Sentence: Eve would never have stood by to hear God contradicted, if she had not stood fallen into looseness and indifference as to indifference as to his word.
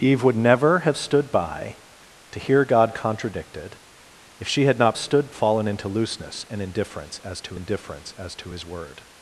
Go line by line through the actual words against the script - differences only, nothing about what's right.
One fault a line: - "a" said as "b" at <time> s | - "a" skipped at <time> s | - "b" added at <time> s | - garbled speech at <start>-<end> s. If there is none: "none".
none